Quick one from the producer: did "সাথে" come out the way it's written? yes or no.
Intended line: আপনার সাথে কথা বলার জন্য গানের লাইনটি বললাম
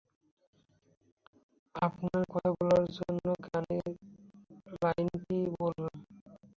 no